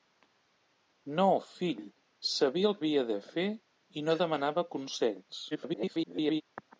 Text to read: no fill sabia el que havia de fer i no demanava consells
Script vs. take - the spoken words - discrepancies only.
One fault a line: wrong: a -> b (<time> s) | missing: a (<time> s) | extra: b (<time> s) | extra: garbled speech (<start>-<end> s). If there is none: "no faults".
missing: que (2.8 s)
extra: garbled speech (5.5-6.4 s)